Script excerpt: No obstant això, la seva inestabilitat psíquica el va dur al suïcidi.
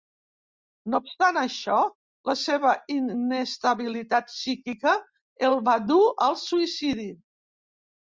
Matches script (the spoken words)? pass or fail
pass